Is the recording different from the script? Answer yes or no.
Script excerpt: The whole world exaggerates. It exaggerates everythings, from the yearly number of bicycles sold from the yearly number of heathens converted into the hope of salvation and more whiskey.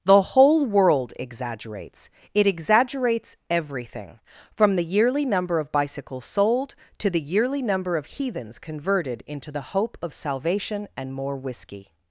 yes